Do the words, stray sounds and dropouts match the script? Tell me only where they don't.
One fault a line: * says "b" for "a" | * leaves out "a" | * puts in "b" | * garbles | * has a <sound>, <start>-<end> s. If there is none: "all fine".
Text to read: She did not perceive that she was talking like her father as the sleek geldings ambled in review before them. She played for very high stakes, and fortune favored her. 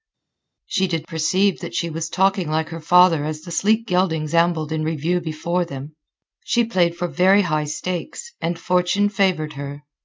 * leaves out "not"